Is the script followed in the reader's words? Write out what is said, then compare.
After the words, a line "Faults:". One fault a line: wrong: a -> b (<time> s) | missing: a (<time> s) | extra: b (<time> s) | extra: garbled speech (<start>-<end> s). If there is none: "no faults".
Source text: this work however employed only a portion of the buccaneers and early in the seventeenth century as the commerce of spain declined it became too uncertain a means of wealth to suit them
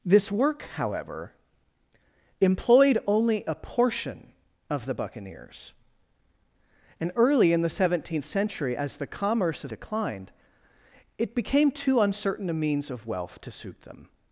this work however employed only a portion of the buccaneers and early in the seventeenth century as the commerce of declined it became too uncertain a means of wealth to suit them
Faults:
missing: spain (9.7 s)